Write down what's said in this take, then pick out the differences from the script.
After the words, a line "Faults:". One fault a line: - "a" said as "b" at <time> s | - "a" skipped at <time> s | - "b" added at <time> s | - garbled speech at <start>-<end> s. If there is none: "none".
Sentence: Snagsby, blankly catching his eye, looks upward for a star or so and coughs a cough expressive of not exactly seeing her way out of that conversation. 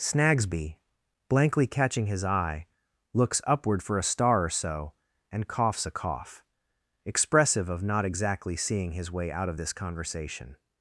Snagsby, blankly catching his eye, looks upward for a star or so and coughs a cough expressive of not exactly seeing his way out of this conversation.
Faults:
- "her" said as "his" at 8.9 s
- "that" said as "this" at 9.6 s